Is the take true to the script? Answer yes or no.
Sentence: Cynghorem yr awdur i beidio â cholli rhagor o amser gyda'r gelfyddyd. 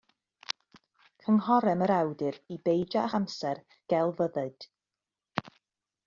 no